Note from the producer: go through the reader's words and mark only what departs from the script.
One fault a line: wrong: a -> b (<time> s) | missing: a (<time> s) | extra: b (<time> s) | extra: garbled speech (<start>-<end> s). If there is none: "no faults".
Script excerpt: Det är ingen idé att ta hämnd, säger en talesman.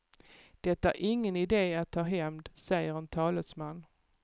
no faults